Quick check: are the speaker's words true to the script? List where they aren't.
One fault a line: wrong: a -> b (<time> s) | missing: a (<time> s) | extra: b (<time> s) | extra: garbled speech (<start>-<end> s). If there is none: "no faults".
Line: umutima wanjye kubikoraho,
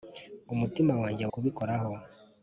no faults